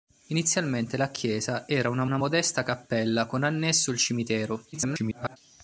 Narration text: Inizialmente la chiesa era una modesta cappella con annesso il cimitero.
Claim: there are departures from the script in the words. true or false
true